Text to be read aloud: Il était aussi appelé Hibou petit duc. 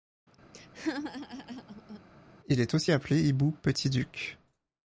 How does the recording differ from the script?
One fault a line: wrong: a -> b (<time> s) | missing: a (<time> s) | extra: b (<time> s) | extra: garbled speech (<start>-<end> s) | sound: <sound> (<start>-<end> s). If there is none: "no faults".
sound: laugh (0.5-2.0 s)
wrong: était -> est (2.6 s)